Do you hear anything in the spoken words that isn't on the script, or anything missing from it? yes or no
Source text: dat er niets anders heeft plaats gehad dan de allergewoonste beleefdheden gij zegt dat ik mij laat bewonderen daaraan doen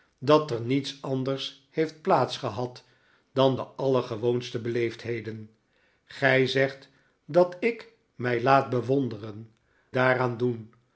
no